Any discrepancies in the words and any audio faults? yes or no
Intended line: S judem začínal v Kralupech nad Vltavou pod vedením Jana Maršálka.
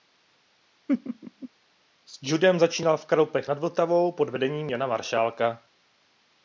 yes